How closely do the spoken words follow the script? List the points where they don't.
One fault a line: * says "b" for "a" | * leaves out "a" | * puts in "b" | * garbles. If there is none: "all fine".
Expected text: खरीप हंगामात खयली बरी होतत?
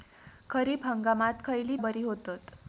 all fine